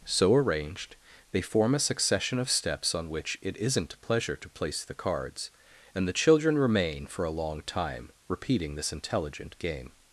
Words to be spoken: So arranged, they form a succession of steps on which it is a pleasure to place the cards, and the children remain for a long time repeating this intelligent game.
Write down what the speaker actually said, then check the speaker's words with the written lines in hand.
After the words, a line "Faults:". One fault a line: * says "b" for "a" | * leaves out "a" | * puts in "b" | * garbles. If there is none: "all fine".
So arranged, they form a succession of steps on which it isn't a pleasure to place the cards, and the children remain for a long time repeating this intelligent game.
Faults:
* says "isn't" for "is"